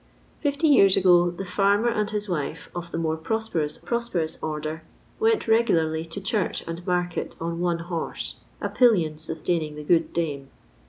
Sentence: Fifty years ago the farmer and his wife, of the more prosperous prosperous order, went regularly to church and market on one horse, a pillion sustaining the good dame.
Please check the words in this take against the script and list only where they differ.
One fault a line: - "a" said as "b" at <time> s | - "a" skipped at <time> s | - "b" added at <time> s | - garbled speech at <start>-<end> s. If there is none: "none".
none